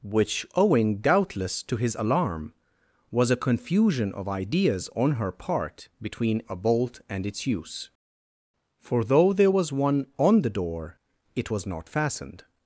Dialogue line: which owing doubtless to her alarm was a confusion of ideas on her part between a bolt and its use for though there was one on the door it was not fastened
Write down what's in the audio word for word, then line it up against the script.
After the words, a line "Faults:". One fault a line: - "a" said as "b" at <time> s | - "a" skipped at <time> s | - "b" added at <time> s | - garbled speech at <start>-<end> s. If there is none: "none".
which owing doubtless to his alarm was a confusion of ideas on her part between a bolt and its use for though there was one on the door it was not fastened
Faults:
- "her" said as "his" at 1.8 s